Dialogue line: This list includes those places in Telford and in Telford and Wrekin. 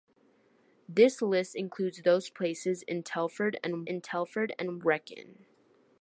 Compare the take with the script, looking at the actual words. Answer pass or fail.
pass